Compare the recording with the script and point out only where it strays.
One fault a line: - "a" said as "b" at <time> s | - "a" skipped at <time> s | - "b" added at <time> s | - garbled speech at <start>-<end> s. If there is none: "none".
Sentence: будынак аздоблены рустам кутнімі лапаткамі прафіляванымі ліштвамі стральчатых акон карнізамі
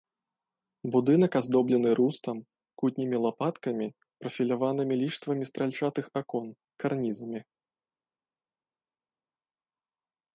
none